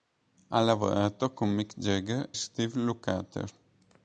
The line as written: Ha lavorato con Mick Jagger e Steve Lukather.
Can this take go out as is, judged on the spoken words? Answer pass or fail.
fail